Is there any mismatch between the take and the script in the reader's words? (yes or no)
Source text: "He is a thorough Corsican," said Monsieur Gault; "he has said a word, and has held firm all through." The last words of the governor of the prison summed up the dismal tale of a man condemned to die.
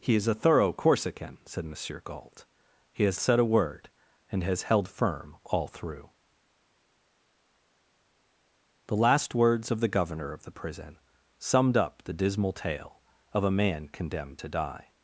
no